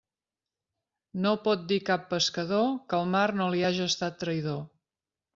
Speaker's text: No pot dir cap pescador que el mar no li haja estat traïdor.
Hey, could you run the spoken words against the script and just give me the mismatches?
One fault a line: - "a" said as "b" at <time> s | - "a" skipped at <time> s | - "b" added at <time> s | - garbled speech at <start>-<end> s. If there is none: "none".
none